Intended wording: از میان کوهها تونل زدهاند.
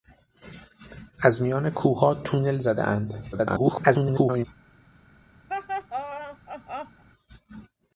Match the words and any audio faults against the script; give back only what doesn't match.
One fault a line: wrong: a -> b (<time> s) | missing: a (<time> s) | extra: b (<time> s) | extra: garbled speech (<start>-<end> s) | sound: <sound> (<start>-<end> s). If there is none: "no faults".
extra: garbled speech (3.3-4.5 s)
sound: laugh (5.5-7.0 s)